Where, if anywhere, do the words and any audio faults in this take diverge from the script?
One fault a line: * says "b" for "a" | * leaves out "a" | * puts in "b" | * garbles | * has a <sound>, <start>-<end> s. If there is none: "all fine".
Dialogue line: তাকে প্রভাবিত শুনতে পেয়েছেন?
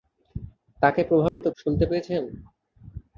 * has a dropout, 1.3-1.4 s